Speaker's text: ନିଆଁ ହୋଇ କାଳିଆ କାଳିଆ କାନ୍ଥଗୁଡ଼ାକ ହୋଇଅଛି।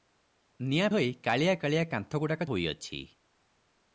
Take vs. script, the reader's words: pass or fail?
pass